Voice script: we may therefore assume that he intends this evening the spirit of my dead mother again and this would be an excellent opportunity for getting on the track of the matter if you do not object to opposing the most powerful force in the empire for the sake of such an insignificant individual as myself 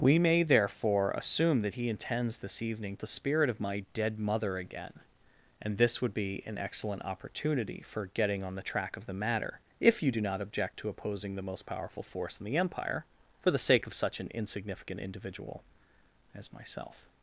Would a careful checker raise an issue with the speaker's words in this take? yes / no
no